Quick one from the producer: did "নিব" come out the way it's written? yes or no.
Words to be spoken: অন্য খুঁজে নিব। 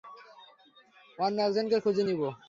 yes